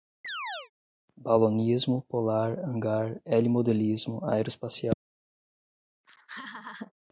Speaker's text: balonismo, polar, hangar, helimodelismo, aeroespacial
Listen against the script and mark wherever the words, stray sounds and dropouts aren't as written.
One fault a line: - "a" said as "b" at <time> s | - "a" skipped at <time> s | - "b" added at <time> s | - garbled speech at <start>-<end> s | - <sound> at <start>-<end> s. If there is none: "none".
- chirp at 0.2-0.7 s
- laugh at 6.0-6.9 s